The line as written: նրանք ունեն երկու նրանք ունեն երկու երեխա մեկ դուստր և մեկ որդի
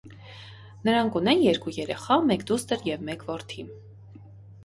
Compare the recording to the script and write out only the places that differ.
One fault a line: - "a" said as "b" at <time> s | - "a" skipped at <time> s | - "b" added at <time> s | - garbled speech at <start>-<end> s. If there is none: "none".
- "նրանք ունեն երկու" skipped at 1.7 s